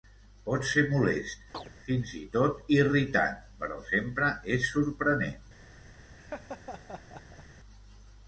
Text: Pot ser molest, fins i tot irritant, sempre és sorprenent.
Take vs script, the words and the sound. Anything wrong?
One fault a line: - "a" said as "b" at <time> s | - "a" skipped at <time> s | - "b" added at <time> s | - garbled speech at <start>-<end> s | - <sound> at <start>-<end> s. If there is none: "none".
- chirp at 1.5-1.7 s
- "però" added at 3.6 s
- laugh at 6.2-7.4 s